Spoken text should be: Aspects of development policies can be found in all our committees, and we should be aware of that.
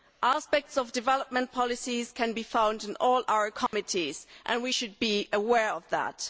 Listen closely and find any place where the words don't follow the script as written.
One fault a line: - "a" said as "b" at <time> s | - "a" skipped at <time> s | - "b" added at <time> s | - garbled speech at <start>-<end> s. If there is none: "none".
none